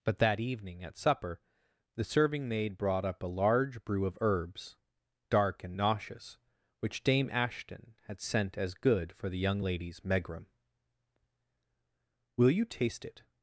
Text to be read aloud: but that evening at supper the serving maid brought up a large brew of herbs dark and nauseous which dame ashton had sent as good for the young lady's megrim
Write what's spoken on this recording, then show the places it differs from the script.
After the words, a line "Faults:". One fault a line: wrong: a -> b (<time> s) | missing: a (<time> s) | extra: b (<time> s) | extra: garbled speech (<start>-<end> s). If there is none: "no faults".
but that evening at supper the serving maid brought up a large brew of herbs dark and nauseous which dame ashton had sent as good for the young lady's megrim will you taste it
Faults:
extra: will you taste it (12.4 s)